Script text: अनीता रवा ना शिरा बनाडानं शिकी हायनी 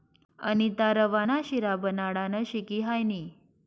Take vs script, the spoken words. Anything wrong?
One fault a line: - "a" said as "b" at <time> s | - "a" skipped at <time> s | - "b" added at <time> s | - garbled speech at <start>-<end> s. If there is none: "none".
none